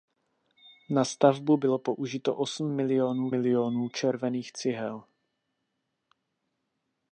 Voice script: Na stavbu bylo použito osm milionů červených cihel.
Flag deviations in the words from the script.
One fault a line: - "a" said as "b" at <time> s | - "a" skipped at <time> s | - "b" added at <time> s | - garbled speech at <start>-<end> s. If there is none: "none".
- "milionů" added at 3.3 s